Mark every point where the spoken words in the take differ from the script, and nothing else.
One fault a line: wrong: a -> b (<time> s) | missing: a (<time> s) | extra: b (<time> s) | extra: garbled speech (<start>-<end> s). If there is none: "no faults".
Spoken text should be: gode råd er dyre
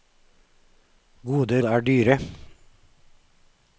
missing: råd (1.6 s)